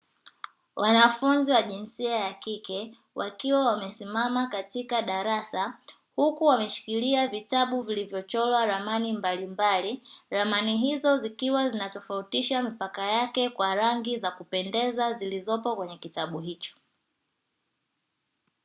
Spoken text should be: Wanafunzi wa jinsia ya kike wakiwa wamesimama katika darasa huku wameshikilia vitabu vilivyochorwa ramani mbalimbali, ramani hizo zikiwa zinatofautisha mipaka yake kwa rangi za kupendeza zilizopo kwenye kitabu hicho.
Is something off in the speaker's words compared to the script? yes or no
no